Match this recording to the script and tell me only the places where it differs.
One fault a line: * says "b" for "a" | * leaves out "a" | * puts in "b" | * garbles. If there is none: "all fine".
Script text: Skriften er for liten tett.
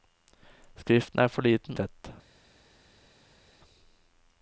all fine